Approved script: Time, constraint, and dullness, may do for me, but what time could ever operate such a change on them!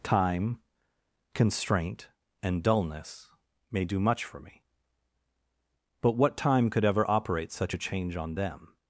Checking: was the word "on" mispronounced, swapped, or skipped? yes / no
no